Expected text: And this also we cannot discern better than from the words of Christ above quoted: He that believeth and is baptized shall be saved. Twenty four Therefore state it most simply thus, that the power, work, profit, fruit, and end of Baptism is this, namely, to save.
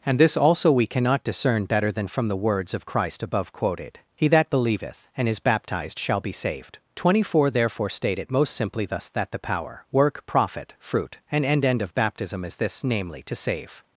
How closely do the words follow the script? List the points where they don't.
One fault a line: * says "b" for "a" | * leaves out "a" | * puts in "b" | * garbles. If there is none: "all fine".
* puts in "end"